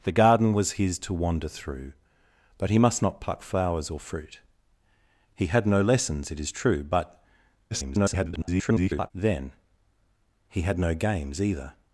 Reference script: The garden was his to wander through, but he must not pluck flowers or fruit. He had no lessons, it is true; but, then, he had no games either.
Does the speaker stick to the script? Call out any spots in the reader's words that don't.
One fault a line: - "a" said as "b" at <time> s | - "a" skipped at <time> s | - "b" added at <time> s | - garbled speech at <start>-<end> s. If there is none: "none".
- garbled speech at 7.7-9.1 s